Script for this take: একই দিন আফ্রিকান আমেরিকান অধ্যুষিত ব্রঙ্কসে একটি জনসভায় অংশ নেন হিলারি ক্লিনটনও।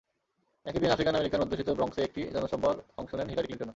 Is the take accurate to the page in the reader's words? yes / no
yes